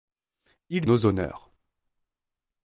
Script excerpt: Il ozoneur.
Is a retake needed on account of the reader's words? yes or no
no